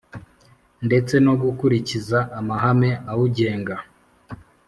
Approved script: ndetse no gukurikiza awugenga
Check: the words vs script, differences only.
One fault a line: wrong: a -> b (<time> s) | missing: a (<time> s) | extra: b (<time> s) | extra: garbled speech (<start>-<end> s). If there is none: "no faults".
extra: amahame (2.4 s)